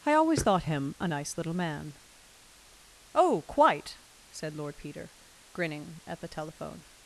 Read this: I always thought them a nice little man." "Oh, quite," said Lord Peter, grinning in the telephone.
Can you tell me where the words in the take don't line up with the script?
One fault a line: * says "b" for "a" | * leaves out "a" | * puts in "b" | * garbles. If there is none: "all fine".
* says "him" for "them"
* says "at" for "in"